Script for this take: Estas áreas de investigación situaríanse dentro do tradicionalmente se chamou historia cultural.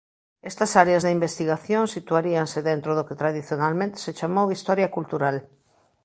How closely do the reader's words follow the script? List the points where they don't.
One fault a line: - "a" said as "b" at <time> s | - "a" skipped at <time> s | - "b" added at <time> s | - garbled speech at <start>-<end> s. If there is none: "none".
- "que" added at 3.1 s